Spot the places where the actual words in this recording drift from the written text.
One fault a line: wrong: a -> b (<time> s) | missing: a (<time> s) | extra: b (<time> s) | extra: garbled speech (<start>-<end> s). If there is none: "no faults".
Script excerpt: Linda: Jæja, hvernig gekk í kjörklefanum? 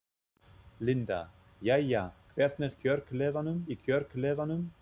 wrong: gekk -> kjörklefanum (2.8 s)